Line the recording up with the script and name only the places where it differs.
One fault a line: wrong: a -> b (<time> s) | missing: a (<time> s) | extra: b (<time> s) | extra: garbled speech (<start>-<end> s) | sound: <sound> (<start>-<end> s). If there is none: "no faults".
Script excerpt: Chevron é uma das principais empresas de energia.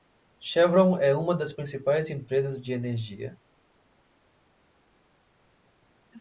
no faults